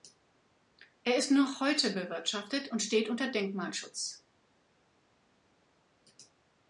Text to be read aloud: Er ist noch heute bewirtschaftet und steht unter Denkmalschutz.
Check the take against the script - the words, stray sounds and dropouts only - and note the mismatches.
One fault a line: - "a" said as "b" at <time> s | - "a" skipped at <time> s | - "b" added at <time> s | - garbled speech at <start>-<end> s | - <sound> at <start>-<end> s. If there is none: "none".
none